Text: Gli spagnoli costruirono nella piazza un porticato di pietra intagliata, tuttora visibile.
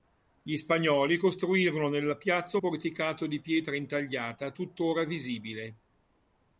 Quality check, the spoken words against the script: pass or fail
fail